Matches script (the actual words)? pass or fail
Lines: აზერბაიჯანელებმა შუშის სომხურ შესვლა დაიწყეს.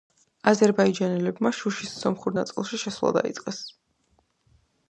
fail